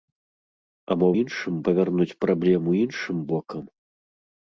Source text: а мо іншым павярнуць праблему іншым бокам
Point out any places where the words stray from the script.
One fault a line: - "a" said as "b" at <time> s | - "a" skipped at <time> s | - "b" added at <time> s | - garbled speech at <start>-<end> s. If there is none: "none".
none